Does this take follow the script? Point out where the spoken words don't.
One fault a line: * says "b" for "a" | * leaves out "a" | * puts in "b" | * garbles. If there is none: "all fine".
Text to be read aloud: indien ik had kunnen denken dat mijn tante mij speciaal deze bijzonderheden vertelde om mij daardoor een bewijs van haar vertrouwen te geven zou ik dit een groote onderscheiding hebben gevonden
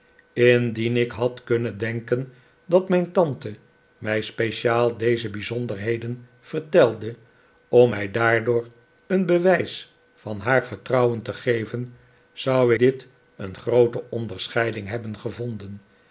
* leaves out "ik"